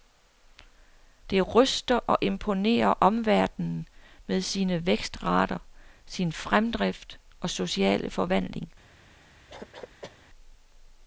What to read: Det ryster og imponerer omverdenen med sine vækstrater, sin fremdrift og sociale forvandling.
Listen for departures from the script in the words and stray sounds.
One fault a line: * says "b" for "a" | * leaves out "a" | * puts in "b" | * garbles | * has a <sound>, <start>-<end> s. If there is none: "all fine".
* has a cough, 9.5-10.2 s